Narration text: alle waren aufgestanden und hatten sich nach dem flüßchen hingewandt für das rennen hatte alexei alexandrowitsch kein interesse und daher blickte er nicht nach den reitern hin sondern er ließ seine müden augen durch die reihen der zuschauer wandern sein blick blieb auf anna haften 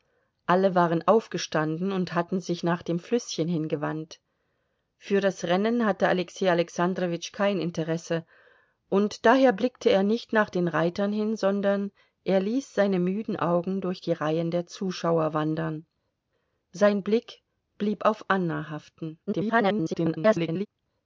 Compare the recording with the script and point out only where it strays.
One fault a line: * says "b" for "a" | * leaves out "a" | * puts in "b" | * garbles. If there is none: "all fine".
* garbles